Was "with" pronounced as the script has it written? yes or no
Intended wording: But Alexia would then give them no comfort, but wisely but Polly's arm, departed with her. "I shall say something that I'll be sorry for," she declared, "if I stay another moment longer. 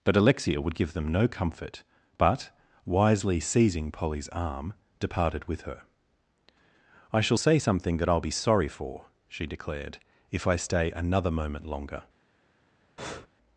yes